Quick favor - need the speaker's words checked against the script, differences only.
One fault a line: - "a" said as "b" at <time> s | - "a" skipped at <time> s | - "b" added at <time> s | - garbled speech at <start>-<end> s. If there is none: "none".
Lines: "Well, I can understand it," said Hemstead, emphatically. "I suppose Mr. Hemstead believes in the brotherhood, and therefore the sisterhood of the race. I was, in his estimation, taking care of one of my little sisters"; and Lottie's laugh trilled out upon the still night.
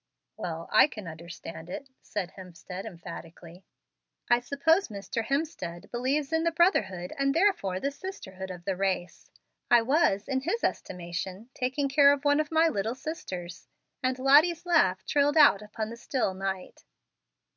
none